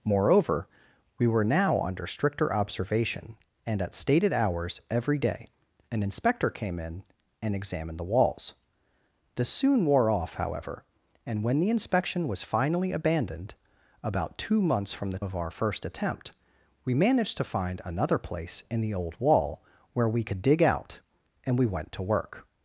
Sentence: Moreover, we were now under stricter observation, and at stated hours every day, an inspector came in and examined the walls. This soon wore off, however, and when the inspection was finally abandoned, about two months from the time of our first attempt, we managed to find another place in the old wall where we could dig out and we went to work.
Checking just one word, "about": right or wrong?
right